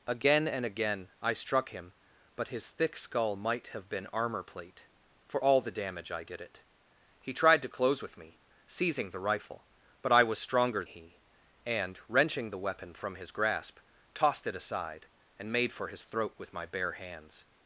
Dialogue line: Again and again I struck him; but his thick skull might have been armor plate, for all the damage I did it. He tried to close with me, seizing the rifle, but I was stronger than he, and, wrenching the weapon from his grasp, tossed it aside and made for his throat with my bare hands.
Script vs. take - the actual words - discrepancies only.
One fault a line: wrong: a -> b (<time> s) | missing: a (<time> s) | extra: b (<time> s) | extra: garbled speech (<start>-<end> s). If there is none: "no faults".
missing: than (10.8 s)